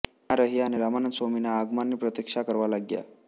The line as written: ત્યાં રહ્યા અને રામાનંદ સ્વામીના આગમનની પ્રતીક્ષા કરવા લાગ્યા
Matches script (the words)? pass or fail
pass